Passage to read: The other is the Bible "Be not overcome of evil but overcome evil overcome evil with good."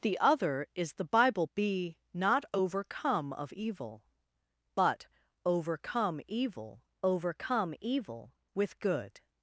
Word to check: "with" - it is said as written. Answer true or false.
true